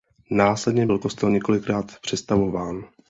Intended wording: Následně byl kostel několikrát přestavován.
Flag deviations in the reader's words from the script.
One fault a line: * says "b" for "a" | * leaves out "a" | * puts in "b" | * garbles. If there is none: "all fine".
all fine